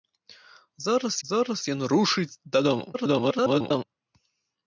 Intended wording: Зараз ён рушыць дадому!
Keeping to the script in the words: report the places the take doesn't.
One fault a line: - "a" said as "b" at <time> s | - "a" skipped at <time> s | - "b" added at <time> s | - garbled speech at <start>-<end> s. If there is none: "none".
- "зараз" added at 1.3 s
- garbled speech at 2.9-3.8 s